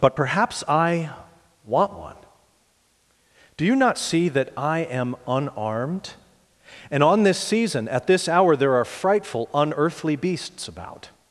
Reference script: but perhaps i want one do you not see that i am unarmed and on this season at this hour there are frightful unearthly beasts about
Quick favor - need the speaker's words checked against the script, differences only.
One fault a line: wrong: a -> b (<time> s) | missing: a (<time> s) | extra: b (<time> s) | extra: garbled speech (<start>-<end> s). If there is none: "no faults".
no faults